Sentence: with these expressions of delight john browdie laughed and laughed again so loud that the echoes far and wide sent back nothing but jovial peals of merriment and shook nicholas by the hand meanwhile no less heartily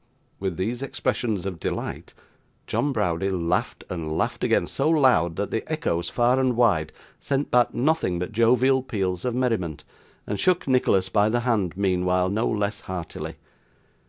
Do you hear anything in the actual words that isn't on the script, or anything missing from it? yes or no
no